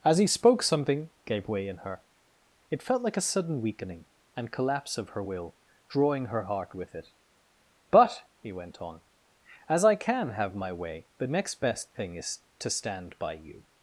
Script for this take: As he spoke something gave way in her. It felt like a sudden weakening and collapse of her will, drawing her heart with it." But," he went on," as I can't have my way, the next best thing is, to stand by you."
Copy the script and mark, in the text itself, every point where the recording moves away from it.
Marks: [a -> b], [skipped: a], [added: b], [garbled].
As he spoke something gave way in her. It felt like a sudden weakening and collapse of her will, drawing her heart with it." But," he went on," as I [can't -> can] have my way, the next best thing is, to stand by you."